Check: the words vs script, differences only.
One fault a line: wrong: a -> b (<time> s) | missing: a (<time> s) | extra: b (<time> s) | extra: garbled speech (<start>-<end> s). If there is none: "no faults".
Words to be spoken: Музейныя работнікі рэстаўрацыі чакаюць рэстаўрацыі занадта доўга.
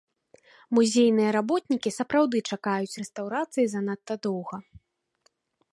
wrong: рэстаўрацыі -> сапраўды (2.0 s)